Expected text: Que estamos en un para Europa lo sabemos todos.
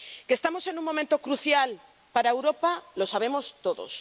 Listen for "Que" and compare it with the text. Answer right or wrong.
right